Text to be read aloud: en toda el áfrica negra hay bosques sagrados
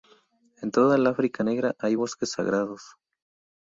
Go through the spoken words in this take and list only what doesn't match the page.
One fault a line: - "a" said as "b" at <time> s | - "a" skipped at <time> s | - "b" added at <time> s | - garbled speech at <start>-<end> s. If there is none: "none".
none